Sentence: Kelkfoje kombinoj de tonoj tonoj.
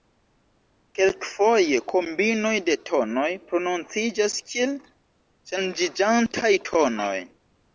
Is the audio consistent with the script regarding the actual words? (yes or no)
no